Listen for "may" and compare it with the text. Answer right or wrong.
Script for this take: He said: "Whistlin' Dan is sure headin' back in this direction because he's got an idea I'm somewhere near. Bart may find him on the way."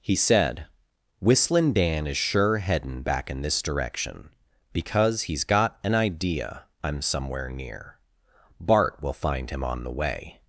wrong